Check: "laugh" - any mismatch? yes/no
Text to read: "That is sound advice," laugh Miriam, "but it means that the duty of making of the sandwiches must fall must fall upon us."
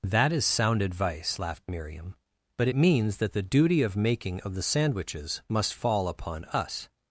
yes